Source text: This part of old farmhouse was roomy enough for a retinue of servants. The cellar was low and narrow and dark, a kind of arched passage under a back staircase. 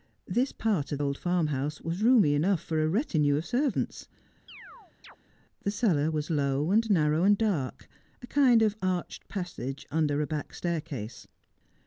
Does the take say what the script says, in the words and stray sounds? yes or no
no